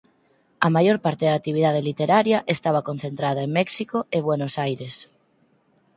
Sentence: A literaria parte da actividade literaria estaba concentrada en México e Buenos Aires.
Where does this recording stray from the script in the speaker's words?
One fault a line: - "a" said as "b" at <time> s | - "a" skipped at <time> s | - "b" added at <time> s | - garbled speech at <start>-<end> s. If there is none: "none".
- "literaria" said as "maior" at 0.8 s